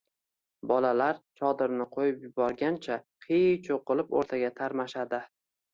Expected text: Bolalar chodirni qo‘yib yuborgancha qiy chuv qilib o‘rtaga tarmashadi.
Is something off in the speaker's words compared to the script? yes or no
no